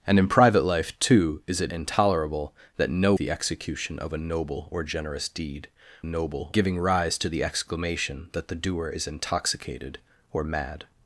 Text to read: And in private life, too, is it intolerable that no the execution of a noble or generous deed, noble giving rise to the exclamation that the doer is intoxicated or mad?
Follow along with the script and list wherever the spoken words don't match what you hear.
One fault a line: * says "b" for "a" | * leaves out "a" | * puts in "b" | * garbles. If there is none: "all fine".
all fine